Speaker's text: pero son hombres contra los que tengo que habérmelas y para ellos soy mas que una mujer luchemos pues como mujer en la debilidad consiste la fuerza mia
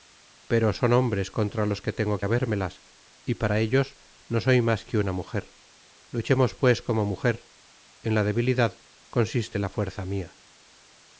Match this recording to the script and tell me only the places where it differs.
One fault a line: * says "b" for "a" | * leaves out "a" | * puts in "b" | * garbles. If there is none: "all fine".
* puts in "no"